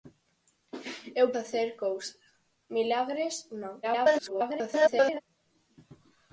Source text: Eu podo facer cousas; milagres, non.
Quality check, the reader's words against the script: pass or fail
fail